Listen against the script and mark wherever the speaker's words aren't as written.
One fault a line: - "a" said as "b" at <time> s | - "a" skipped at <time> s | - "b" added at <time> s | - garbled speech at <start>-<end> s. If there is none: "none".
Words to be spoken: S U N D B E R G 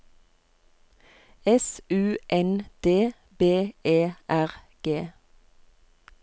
none